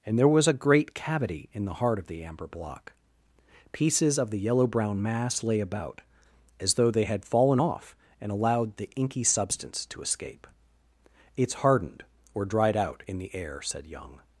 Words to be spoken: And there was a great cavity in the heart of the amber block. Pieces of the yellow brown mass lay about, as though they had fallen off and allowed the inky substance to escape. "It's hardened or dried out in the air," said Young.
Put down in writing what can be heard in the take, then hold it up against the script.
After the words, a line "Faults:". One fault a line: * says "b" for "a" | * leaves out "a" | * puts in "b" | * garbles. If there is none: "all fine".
And there was a great cavity in the heart of the amber block. Pieces of the yellow brown mass lay about, as though they had fallen off and allowed the inky substance to escape. "It's hardened or dried out in the air," said Young.
Faults:
all fine